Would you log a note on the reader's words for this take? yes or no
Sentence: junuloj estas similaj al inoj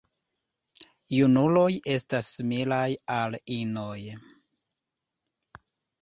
no